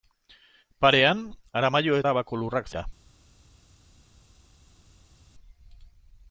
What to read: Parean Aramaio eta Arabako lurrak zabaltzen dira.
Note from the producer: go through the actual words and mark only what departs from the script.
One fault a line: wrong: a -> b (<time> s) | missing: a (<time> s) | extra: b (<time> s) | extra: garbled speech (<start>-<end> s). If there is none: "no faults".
missing: eta (2.0 s)
missing: zabaltzen (2.7 s)